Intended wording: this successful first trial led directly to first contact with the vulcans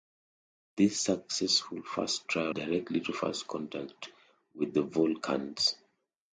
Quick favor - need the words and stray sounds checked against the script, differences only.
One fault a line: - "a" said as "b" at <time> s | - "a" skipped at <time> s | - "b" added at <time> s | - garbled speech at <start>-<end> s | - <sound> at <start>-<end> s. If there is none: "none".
- "led" skipped at 2.5 s